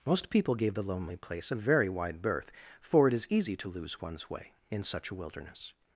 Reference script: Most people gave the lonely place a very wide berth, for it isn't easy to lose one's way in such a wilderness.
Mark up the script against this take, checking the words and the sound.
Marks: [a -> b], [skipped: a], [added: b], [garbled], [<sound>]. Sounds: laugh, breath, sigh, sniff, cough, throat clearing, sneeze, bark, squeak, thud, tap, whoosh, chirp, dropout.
Most people gave the lonely place a very wide berth, for it [isn't -> is] easy to lose one's way in such a wilderness.